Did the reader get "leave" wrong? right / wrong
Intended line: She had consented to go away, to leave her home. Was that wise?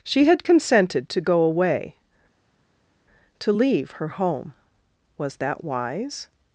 right